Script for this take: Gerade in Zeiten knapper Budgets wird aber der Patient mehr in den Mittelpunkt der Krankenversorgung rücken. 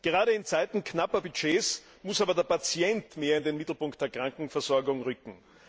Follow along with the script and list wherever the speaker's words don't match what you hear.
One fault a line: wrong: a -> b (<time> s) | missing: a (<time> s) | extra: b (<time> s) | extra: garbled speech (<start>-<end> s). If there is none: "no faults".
wrong: wird -> muss (2.0 s)